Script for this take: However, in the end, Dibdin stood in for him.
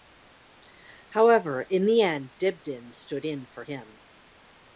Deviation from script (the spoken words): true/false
false